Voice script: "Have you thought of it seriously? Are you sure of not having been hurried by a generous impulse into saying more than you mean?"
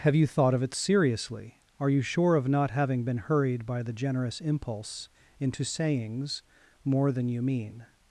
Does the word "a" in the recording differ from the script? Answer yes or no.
yes